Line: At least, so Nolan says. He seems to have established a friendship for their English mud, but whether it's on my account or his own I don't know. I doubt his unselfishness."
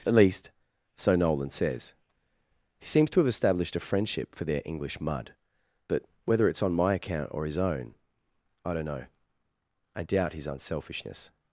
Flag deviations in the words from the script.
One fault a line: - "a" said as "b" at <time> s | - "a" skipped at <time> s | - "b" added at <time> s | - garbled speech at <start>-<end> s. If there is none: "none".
none